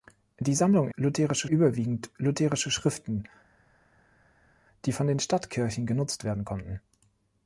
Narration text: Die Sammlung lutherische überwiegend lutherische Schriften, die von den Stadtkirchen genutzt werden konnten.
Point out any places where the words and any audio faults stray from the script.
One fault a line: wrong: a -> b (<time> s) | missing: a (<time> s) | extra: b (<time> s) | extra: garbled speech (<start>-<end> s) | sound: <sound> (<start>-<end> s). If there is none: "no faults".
no faults